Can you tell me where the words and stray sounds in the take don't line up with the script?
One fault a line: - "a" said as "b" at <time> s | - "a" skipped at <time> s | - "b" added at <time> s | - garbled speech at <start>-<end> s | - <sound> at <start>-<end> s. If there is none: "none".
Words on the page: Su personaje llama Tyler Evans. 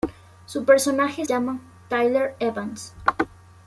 none